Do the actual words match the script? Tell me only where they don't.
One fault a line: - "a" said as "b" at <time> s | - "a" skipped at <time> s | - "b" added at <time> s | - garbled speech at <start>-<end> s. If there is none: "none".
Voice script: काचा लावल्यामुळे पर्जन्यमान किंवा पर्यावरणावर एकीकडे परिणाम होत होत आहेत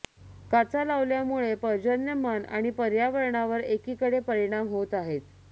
- "किंवा" said as "आणि" at 2.5 s
- "होत" skipped at 4.9 s